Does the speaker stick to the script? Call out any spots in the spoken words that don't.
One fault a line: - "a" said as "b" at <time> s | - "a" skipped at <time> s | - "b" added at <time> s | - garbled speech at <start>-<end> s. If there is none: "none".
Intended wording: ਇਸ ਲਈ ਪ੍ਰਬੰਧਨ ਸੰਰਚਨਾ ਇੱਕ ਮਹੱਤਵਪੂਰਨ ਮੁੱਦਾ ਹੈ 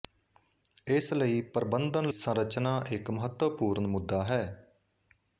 none